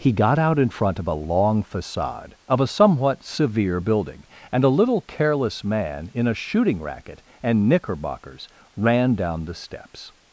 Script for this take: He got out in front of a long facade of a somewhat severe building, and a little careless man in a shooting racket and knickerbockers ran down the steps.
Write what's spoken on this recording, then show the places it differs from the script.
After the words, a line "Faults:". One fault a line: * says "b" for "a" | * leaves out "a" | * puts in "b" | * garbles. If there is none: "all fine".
He got out in front of a long facade of a somewhat severe building, and a little careless man in a shooting racket and knickerbockers ran down the steps.
Faults:
all fine